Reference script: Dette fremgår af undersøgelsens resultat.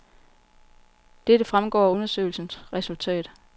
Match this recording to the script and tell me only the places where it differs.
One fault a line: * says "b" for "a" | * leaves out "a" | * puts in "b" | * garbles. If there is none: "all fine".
all fine